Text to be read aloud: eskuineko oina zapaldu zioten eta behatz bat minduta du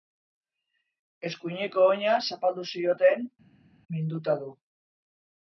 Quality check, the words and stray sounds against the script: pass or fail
fail